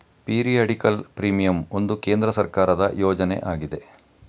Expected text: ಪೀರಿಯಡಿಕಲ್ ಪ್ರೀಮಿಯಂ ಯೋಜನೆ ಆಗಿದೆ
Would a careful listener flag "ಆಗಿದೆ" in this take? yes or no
no